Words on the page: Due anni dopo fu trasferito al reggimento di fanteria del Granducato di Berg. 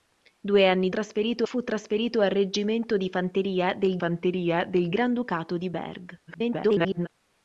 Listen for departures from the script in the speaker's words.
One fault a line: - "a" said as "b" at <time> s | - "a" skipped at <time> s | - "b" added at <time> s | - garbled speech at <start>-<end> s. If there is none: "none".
- "dopo" said as "trasferito" at 0.9 s
- "fanteria del" added at 4.0 s
- garbled speech at 6.3-7.1 s